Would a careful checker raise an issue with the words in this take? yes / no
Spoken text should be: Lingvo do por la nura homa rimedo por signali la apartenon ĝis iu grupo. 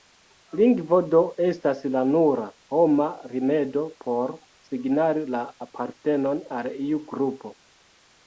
yes